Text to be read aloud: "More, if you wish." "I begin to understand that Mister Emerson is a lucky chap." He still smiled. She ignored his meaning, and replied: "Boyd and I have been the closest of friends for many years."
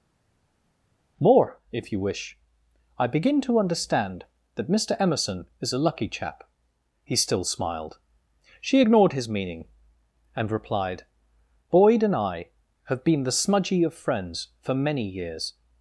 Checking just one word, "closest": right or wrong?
wrong